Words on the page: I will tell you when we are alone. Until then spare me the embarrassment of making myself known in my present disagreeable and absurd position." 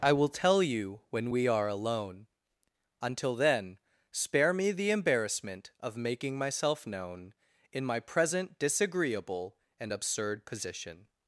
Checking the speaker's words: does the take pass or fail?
pass